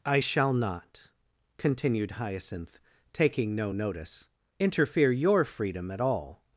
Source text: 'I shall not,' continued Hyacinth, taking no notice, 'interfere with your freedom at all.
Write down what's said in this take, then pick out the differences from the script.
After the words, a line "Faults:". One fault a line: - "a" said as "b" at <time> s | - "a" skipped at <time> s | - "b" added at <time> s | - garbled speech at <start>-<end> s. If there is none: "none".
'I shall not,' continued Hyacinth, taking no notice, 'interfere your freedom at all.
Faults:
- "with" skipped at 5.1 s